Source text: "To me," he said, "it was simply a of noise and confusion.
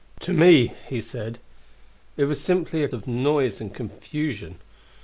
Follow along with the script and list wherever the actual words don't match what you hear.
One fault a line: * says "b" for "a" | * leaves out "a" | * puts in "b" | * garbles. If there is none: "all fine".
all fine